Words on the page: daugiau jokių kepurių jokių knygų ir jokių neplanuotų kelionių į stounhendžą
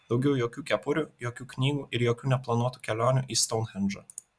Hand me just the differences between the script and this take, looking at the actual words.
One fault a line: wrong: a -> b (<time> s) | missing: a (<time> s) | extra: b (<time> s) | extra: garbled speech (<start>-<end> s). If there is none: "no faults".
no faults